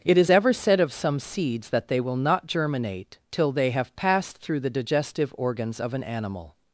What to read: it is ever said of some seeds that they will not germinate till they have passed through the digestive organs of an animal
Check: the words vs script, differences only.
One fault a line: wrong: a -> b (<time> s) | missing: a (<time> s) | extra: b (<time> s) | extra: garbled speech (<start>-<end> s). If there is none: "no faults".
no faults